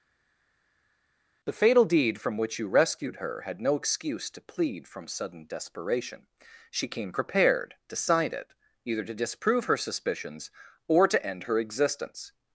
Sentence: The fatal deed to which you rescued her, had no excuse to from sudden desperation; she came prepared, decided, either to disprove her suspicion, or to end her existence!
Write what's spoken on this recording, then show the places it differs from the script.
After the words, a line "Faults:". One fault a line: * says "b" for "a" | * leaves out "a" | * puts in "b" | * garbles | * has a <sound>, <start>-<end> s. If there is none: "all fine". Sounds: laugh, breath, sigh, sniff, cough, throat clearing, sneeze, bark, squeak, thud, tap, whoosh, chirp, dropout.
The fatal deed from which you rescued her, had no excuse to plead from sudden desperation; she came prepared, decided, either to disprove her suspicions, or to end her existence!
Faults:
* says "from" for "to"
* puts in "plead"
* says "suspicions" for "suspicion"